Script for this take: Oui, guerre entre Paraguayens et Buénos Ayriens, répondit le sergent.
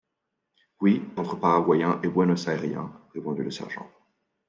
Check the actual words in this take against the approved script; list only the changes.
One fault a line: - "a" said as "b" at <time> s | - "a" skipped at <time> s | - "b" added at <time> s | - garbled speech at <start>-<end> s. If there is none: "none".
- "guerre" skipped at 1.0 s